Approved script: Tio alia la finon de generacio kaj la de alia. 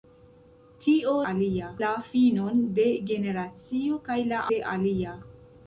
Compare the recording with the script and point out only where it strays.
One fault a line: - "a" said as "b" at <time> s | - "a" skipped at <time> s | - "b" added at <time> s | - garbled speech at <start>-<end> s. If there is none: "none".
none